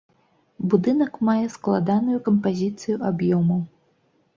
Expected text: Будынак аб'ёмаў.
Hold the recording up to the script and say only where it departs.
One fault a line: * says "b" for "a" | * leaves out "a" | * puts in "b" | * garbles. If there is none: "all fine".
* puts in "мае складаную кампазіцыю"